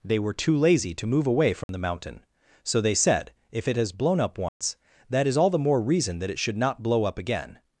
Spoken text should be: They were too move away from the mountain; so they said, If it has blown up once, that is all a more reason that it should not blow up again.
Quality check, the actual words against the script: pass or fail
fail